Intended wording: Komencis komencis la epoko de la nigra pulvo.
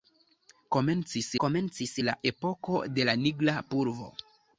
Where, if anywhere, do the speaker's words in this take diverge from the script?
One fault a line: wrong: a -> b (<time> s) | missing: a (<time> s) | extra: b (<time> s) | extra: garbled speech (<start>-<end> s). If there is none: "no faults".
no faults